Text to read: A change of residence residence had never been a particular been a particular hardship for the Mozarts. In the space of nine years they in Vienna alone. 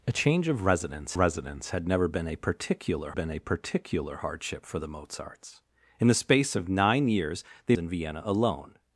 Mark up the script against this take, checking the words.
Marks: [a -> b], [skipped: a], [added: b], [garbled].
A change of residence residence had never been a particular been a particular hardship for the Mozarts. In the space of nine years they in Vienna alone.